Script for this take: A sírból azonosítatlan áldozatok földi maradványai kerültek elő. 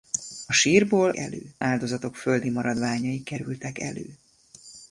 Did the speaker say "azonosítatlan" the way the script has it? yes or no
no